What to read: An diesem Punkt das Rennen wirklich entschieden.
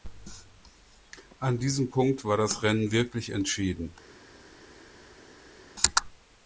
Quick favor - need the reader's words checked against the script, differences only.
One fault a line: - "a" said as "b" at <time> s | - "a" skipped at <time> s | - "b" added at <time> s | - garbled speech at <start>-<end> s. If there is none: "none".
- "war" added at 2.2 s